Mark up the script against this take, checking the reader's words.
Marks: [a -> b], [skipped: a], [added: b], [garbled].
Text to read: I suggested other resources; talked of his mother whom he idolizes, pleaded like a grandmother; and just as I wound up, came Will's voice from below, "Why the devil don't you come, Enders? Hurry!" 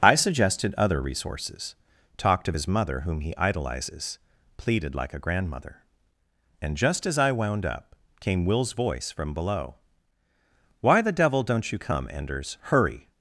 I suggested other resources; talked of his mother whom he idolizes, pleaded like a grandmother; and just as I wound up, came Will's voice from below, "Why the devil don't you come, Enders? Hurry!"